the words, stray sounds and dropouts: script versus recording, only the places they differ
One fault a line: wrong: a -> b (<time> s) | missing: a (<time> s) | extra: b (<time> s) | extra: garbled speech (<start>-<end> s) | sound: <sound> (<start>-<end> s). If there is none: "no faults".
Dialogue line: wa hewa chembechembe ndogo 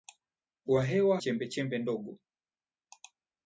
no faults